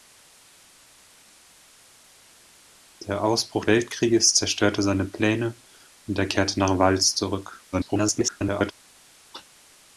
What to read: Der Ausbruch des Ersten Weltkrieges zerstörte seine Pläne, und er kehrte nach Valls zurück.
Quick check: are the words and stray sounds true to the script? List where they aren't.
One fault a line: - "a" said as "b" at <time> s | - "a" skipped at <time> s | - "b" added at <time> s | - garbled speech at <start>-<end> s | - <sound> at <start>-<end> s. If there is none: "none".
- "des Ersten" skipped at 3.7 s
- garbled speech at 7.7-8.7 s